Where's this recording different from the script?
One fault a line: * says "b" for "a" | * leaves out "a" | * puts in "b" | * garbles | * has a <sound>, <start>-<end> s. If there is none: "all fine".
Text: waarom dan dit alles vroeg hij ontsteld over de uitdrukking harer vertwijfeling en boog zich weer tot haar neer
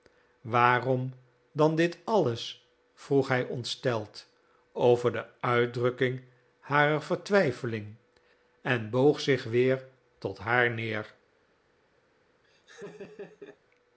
* has a laugh, 12.4-13.6 s